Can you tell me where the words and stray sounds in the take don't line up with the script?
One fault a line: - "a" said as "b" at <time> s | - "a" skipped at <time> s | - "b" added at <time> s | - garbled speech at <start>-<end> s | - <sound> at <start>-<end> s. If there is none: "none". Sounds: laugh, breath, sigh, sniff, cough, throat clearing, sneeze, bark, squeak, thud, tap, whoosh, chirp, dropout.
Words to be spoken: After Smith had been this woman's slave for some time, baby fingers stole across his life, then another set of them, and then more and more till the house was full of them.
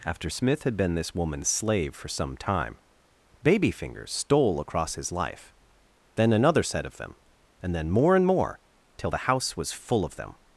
none